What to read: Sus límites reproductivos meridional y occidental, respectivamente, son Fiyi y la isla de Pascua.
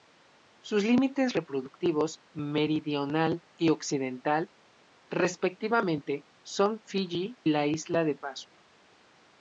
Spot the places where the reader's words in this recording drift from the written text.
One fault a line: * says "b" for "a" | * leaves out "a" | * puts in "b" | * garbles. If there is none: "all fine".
* leaves out "y"